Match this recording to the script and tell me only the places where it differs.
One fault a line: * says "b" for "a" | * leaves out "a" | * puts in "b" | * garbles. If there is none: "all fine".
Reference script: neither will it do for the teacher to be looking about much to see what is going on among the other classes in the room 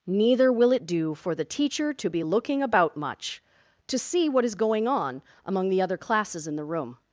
all fine